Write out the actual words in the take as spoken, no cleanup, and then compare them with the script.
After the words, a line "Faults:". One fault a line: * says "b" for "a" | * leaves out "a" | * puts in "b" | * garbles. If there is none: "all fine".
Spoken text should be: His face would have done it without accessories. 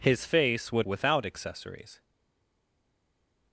His face would without accessories.
Faults:
* leaves out "have done it"